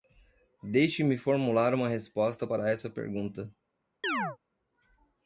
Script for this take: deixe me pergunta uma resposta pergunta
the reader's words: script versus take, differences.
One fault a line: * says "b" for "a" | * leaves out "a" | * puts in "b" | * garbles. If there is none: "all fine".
* says "formular" for "pergunta"
* puts in "para essa"